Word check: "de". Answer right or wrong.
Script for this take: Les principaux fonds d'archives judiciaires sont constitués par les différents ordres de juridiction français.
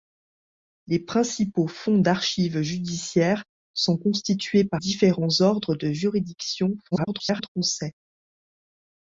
right